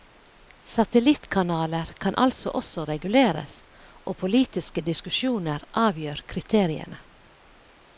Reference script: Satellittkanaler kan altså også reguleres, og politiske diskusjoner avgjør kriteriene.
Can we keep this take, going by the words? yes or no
yes